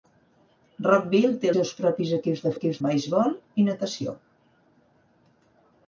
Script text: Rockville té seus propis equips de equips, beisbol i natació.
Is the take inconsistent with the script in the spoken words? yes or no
no